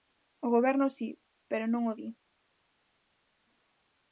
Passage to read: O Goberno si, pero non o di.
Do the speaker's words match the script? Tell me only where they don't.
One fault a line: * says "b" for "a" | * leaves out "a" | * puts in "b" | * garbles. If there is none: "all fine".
all fine